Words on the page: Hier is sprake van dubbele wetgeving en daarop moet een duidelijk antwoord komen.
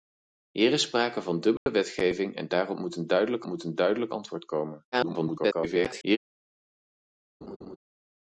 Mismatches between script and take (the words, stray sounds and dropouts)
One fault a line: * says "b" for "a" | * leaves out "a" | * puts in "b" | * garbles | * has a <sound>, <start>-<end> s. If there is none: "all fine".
* has a dropout, 1.6-1.7 s
* puts in "moet een duidelijk"
* garbles
* has a laugh, 7.4-7.8 s